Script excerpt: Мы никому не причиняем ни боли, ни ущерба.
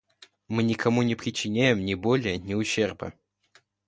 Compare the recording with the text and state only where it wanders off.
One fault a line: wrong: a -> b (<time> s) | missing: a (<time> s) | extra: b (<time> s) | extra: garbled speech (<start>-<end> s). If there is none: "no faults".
no faults